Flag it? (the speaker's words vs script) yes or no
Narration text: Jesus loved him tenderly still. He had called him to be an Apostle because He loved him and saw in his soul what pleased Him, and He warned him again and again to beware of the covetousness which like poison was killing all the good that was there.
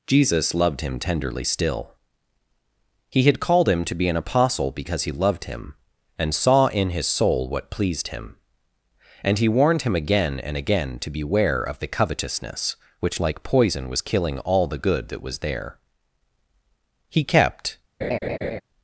yes